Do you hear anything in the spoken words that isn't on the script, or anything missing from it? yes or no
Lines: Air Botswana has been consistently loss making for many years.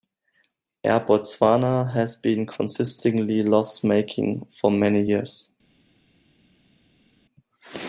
no